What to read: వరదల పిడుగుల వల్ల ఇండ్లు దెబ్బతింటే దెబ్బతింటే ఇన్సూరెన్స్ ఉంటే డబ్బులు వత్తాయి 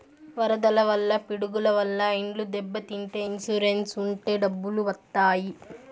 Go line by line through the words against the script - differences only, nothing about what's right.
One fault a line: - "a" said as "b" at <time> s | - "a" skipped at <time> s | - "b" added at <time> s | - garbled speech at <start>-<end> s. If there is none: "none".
- "వల్ల" added at 0.9 s
- "దెబ్బతింటే" skipped at 3.2 s